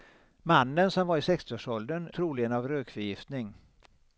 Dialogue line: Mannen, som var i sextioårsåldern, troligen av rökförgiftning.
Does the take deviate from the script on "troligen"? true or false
false